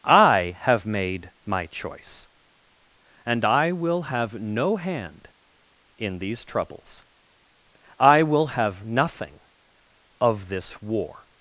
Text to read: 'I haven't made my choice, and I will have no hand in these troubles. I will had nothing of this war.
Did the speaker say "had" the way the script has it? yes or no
no